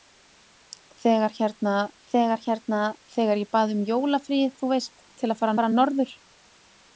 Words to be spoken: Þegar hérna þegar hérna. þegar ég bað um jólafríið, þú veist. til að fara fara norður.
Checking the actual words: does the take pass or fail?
pass